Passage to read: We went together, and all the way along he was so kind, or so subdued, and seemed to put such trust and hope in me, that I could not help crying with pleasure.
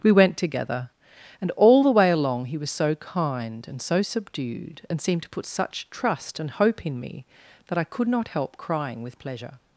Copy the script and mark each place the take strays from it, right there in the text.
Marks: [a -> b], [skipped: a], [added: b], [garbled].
We went together, and all the way along he was so kind, [or -> and] so subdued, and seemed to put such trust and hope in me, that I could not help crying with pleasure.